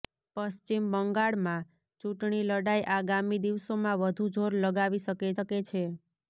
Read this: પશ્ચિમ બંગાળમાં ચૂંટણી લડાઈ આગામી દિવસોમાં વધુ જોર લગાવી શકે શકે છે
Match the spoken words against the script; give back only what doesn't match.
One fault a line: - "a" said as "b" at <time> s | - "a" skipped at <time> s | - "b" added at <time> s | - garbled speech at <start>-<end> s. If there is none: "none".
none